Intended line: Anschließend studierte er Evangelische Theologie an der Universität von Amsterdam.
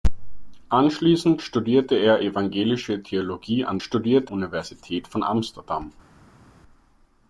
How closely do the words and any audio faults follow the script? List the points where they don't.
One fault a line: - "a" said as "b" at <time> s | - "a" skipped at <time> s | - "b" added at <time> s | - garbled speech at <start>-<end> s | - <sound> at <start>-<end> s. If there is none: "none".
- "der" said as "studierte" at 3.8 s